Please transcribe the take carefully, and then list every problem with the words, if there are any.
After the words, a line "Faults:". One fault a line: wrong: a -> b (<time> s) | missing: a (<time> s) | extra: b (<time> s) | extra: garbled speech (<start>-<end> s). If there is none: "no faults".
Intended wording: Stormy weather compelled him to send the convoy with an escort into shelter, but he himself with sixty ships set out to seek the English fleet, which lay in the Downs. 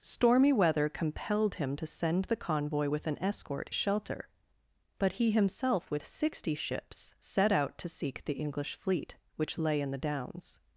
Stormy weather compelled him to send the convoy with an escort shelter, but he himself with sixty ships set out to seek the English fleet, which lay in the Downs.
Faults:
missing: into (3.7 s)